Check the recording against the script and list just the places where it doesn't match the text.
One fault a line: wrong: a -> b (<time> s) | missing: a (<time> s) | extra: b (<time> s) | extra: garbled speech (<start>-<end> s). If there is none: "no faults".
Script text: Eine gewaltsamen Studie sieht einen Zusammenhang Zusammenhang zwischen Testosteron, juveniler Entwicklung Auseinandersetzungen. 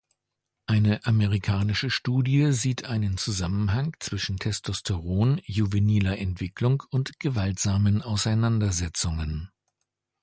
wrong: gewaltsamen -> amerikanische (1.1 s)
missing: Zusammenhang (4.0 s)
extra: und gewaltsamen (6.9 s)